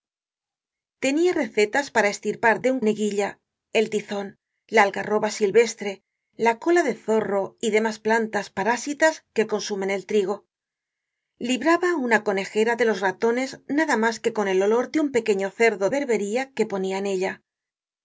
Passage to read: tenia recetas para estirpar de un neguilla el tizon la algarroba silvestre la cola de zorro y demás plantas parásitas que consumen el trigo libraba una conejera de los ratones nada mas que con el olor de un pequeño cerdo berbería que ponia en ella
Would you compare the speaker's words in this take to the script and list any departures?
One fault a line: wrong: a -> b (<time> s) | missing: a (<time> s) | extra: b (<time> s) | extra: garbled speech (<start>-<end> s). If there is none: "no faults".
no faults